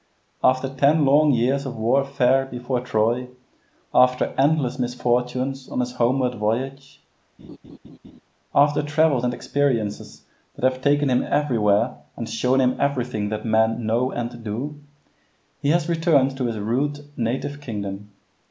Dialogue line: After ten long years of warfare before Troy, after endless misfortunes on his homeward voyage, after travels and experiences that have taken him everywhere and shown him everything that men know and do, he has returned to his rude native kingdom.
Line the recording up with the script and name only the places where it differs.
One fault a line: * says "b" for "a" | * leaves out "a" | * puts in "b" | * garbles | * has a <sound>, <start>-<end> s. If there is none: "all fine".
* has a laugh, 7.4-8.2 s